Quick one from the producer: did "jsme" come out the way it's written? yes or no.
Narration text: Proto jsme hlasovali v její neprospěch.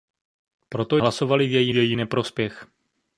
no